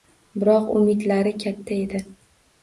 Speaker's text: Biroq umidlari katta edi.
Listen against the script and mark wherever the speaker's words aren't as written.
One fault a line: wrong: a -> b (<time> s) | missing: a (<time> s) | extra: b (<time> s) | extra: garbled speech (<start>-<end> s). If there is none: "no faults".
no faults